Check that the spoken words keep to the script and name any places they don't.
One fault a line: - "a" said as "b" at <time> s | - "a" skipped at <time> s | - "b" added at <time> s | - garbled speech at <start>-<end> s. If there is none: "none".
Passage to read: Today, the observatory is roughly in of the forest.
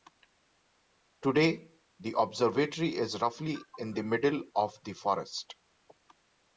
- "the middle" added at 3.9 s